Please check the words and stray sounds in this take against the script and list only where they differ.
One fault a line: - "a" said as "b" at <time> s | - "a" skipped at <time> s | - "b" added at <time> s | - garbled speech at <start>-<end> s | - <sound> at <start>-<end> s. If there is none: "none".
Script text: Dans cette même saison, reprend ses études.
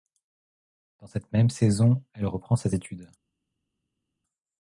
- "elle" added at 2.1 s